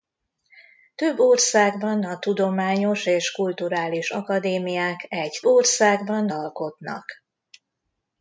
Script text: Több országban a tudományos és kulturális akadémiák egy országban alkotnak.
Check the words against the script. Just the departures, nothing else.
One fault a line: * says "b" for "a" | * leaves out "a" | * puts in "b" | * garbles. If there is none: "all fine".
all fine